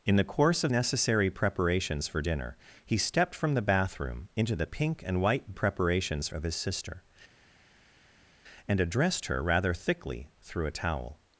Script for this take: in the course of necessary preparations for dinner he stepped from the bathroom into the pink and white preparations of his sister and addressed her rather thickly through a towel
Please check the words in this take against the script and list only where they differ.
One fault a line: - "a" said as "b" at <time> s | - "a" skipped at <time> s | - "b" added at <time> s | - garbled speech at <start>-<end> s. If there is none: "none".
none